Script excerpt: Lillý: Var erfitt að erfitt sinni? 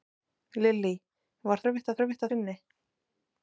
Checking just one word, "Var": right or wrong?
right